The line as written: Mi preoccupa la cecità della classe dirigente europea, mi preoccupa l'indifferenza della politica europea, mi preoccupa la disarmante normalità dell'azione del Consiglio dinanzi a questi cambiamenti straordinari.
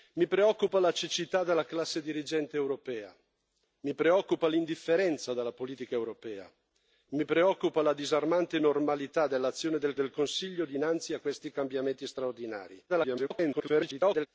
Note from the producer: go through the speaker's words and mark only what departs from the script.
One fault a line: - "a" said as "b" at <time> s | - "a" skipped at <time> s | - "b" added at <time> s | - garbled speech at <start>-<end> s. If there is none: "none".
- "del" added at 9.9 s
- garbled speech at 12.9-14.3 s